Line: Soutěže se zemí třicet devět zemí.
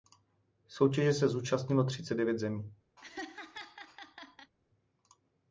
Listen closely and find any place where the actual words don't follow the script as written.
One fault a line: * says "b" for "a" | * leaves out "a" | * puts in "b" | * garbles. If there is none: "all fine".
* says "zúčastnilo" for "zemí"